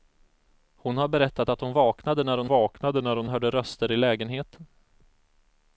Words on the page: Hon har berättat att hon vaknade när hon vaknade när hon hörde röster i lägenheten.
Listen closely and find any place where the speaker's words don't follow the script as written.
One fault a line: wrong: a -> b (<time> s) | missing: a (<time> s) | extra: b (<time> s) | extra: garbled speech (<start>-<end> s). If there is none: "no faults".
no faults